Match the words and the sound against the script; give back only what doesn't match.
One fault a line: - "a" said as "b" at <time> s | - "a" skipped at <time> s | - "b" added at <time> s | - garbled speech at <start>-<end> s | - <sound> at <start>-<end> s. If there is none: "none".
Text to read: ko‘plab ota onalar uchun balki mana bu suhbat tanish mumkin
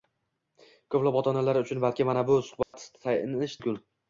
- dropout at 2.6-2.7 s